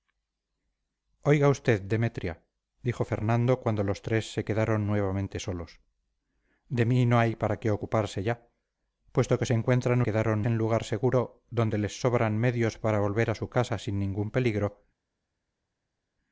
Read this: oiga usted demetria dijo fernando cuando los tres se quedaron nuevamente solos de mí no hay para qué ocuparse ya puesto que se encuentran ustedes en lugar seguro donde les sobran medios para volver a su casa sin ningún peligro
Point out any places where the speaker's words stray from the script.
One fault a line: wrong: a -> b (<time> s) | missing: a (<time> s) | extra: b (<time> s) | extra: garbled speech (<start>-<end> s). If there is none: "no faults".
wrong: ustedes -> quedaron (10.0 s)